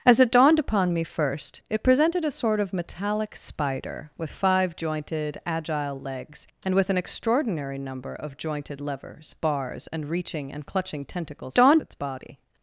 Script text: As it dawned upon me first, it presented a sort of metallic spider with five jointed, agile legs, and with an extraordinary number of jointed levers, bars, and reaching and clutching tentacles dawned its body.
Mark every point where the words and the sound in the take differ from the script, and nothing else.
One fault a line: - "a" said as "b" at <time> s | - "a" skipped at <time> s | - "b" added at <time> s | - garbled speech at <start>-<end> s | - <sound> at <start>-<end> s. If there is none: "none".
none